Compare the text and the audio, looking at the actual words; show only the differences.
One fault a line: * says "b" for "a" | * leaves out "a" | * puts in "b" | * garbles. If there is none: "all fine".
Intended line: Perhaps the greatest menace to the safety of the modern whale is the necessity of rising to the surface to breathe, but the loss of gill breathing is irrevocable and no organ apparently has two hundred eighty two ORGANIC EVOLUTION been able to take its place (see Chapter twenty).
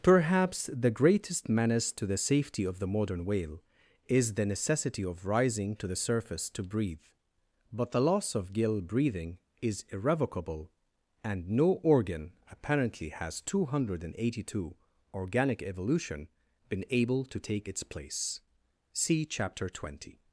all fine